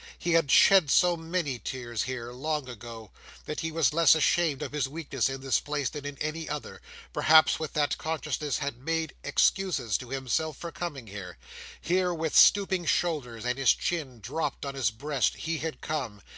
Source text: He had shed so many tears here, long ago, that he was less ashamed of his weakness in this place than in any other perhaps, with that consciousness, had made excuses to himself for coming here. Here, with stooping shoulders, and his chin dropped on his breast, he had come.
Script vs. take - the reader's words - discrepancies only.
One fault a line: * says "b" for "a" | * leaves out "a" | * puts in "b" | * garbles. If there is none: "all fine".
all fine